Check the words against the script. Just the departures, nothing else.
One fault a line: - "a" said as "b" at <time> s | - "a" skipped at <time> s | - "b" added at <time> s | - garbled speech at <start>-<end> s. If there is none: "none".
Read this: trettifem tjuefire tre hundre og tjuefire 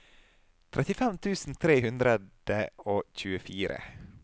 - "tjuefire" said as "tusen" at 1.2 s